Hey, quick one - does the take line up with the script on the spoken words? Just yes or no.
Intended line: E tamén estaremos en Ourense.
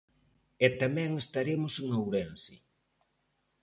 yes